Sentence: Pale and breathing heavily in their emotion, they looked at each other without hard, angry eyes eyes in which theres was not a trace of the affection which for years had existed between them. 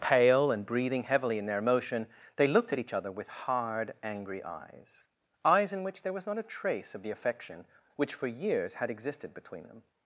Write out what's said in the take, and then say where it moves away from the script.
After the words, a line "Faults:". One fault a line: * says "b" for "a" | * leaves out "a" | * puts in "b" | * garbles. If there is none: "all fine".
Pale and breathing heavily in their emotion, they looked at each other with hard, angry eyes eyes in which there was not a trace of the affection which for years had existed between them.
Faults:
* says "with" for "without"
* says "there" for "theres"